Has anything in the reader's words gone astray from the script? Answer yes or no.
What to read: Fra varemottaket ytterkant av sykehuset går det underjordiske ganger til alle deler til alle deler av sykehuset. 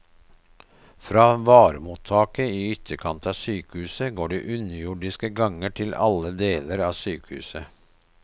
yes